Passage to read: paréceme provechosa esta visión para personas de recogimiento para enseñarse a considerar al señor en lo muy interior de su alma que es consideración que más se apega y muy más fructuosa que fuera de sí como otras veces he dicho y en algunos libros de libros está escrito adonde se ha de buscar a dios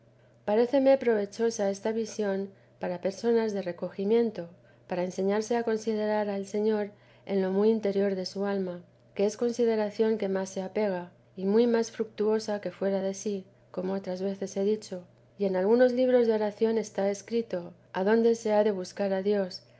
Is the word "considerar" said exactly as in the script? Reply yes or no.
yes